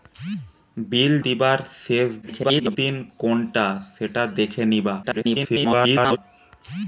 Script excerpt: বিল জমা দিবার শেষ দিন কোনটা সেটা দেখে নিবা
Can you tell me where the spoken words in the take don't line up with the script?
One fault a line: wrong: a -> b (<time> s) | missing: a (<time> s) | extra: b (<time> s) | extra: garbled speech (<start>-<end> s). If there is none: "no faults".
missing: জমা (1.1 s)
extra: garbled speech (2.2-2.8 s)
extra: garbled speech (5.0-6.2 s)